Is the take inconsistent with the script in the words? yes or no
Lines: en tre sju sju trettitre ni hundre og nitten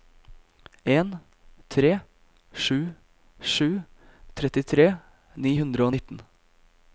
no